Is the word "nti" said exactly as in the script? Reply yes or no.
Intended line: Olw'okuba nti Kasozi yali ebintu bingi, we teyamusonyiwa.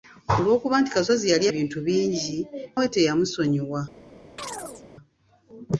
yes